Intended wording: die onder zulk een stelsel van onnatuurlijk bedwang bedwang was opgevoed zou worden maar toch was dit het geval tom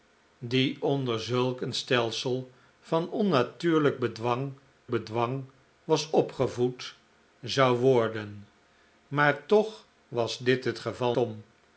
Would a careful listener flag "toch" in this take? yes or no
no